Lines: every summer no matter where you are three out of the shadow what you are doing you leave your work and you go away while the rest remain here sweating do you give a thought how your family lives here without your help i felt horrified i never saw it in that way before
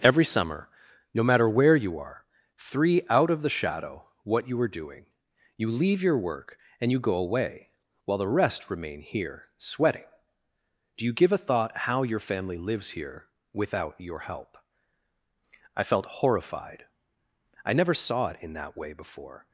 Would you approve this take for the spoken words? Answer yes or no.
yes